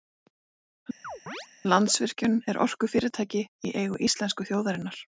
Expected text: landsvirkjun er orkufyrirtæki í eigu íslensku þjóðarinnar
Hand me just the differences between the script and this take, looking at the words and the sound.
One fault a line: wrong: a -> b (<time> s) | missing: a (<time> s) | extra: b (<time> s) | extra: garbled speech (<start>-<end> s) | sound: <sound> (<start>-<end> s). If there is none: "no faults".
sound: chirp (1.0-1.5 s)